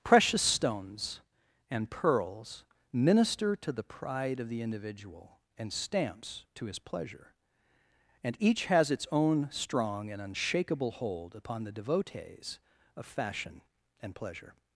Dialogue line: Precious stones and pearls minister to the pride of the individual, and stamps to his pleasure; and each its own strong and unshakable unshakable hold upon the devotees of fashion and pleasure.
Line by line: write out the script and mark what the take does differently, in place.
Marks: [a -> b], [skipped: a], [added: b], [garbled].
Precious stones and pearls minister to the pride of the individual, and stamps to his pleasure; and each [added: has] its own strong and unshakable [skipped: unshakable] hold upon the devotees of fashion and pleasure.